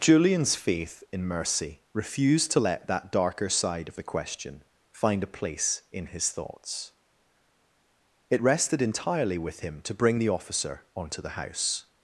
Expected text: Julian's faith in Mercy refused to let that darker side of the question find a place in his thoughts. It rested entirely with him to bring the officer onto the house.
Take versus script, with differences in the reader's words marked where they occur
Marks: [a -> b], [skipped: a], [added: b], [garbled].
Julian's faith in Mercy refused to let that darker side of the question find a place in his thoughts. It rested entirely with him to bring the officer onto the house.